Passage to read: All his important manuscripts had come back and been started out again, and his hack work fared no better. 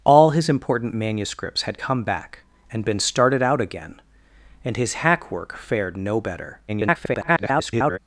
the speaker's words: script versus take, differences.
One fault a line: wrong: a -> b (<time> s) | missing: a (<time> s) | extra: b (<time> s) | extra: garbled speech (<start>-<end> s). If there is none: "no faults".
extra: garbled speech (6.7-8.0 s)